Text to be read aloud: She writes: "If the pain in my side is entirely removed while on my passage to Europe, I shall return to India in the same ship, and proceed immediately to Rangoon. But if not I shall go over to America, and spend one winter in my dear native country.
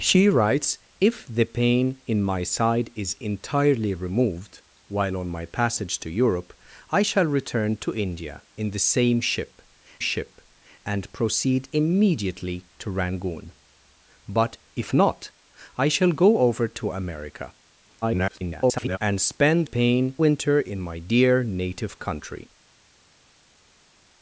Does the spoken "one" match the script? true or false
false